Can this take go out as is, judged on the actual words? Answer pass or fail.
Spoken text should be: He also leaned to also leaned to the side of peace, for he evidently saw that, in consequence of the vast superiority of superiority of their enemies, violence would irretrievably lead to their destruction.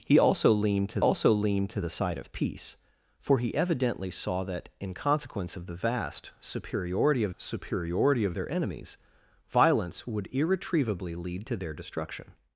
pass